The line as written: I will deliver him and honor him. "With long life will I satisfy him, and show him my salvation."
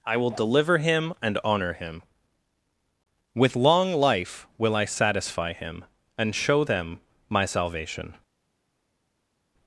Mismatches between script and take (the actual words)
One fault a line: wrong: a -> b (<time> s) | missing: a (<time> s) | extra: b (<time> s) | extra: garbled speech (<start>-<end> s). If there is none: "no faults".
wrong: him -> them (6.6 s)